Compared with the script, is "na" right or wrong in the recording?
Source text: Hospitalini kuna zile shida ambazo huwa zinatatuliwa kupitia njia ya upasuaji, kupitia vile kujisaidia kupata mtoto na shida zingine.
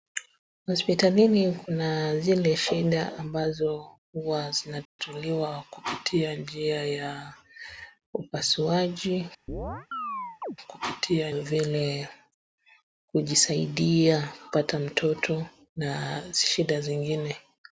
right